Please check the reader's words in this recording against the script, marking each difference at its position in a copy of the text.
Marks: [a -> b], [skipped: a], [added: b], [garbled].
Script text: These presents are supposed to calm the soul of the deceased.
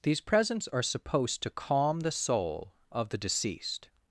These presents are supposed to calm the soul of the deceased.